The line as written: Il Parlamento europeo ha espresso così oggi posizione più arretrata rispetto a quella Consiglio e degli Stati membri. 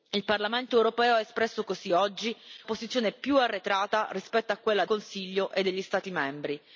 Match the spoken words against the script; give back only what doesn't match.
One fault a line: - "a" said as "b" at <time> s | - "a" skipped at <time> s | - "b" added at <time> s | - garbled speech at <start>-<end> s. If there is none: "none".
none